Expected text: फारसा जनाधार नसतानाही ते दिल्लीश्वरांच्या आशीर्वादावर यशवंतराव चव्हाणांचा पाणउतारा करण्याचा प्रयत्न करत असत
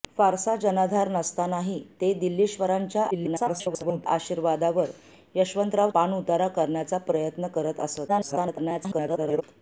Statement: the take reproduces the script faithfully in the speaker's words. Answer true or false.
false